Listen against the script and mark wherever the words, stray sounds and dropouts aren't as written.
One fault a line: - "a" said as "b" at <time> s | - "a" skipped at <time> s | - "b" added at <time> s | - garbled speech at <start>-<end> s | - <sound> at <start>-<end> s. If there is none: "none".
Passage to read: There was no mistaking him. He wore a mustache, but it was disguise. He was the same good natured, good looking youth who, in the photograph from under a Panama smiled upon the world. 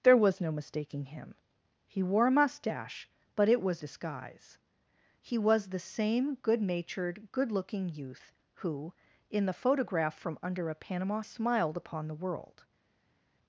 none